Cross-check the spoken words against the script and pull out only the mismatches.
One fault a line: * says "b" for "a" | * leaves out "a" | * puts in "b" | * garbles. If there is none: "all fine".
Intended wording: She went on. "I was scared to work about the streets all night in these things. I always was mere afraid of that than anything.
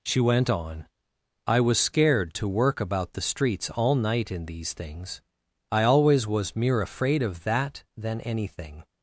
all fine